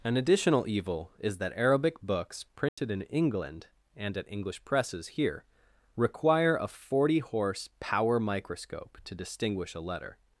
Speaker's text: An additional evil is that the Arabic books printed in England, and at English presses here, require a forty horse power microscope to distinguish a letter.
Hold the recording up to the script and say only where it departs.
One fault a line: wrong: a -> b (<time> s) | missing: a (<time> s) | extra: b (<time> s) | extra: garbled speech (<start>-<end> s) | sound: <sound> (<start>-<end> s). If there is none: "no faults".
missing: the (1.5 s)
sound: dropout (2.7-2.8 s)